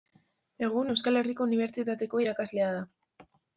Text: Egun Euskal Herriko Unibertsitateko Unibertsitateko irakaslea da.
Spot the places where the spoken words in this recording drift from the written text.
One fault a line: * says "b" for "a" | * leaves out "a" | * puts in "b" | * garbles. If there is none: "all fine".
* leaves out "Unibertsitateko"